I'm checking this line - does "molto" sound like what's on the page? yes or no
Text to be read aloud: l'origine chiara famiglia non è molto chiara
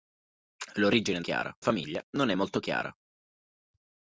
yes